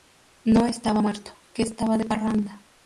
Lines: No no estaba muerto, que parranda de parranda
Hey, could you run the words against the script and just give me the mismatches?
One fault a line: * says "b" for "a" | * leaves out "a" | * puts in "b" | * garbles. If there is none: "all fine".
* leaves out "no"
* says "estaba" for "parranda"